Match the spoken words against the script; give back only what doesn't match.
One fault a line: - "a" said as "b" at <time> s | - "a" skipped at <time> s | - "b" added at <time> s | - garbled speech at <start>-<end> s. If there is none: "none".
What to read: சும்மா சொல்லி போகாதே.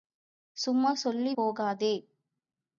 none